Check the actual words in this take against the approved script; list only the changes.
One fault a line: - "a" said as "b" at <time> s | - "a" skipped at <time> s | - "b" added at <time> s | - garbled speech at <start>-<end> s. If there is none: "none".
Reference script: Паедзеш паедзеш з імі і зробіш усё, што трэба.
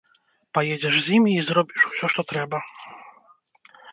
- "паедзеш" skipped at 0.9 s